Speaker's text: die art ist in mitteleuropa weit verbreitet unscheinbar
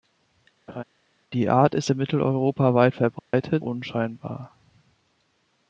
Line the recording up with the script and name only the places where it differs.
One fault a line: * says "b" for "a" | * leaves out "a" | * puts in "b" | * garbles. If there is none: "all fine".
all fine